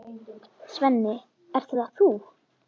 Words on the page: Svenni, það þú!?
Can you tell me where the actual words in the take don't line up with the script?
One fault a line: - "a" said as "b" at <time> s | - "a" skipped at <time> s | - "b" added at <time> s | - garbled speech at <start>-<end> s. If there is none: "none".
- "ert" added at 1.6 s